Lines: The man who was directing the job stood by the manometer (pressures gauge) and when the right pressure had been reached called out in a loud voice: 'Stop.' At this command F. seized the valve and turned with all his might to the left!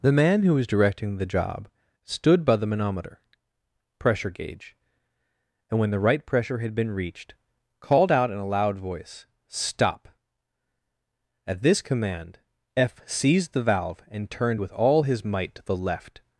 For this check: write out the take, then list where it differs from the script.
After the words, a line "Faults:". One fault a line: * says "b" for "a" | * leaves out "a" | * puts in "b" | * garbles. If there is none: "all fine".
The man who was directing the job stood by the manometer (pressure gauge) and when the right pressure had been reached called out in a loud voice: 'Stop.' At this command F. seized the valve and turned with all his might to the left!
Faults:
* says "pressure" for "pressures"